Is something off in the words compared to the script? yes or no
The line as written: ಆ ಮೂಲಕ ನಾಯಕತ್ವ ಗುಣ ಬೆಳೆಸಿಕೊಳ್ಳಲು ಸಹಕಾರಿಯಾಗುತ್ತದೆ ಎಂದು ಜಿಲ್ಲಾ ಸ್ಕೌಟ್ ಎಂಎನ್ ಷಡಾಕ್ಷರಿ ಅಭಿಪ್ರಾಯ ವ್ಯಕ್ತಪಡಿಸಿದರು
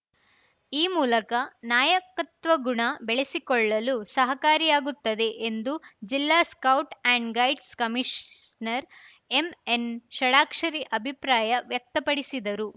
yes